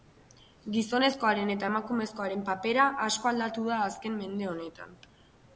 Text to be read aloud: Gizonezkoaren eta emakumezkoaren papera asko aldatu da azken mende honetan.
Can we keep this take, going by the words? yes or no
yes